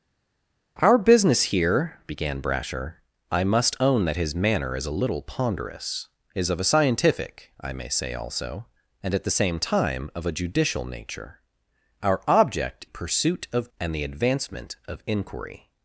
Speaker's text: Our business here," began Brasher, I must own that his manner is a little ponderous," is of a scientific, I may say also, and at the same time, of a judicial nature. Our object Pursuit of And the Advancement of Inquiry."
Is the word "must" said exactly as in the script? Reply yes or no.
yes